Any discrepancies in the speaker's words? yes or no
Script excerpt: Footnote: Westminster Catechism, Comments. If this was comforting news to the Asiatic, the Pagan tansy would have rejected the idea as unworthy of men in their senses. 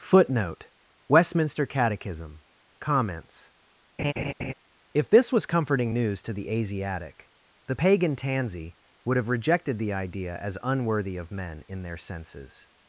no